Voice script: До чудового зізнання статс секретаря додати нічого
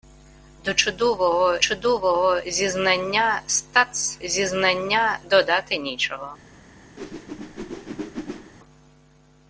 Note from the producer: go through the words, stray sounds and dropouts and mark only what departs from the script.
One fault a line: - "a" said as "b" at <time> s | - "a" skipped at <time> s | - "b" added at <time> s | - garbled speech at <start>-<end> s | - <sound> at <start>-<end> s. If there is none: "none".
- "чудового" added at 1.6 s
- "секретаря" said as "зізнання" at 4.2 s
- whoosh at 7.0-8.5 s